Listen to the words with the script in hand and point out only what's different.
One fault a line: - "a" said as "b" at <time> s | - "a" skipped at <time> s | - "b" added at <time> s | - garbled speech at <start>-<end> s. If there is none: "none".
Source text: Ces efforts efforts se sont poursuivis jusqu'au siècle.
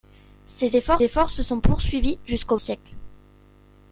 none